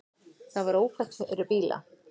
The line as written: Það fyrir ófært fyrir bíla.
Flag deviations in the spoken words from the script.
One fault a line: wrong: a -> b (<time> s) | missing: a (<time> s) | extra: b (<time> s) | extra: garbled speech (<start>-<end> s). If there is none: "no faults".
wrong: fyrir -> var (0.7 s)